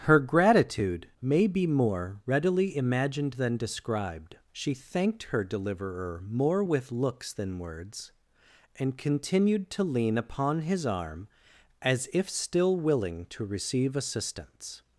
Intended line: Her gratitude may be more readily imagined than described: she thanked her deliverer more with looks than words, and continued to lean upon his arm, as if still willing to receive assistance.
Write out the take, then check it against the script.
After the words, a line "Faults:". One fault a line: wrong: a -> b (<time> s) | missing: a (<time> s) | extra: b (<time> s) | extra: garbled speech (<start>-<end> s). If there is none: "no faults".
Her gratitude may be more readily imagined than described: she thanked her deliverer more with looks than words, and continued to lean upon his arm, as if still willing to receive assistance.
Faults:
no faults